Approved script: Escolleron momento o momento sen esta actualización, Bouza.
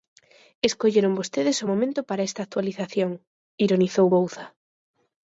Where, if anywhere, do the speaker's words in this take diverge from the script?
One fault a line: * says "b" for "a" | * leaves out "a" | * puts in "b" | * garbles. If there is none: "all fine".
* says "vostedes" for "momento"
* says "para" for "sen"
* puts in "ironizou"